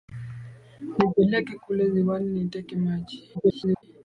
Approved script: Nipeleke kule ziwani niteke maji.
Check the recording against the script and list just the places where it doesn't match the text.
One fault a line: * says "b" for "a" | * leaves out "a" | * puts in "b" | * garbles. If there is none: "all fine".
* garbles